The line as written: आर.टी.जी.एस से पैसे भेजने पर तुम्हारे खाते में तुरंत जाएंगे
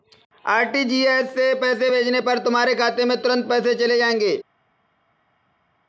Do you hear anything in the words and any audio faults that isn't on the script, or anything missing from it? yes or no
yes